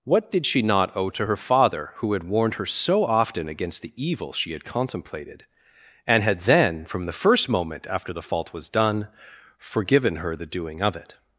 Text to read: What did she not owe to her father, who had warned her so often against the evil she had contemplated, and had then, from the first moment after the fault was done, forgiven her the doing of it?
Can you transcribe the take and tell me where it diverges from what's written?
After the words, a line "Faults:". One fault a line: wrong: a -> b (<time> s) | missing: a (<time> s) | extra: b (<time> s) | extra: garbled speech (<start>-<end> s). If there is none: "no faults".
What did she not owe to her father, who had warned her so often against the evil she had contemplated, and had then, from the first moment after the fault was done, forgiven her the doing of it?
Faults:
no faults